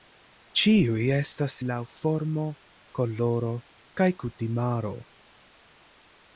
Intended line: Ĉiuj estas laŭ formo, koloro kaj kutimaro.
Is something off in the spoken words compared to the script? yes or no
no